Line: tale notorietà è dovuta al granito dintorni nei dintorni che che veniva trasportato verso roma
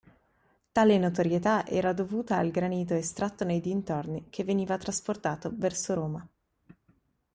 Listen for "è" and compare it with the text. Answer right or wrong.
wrong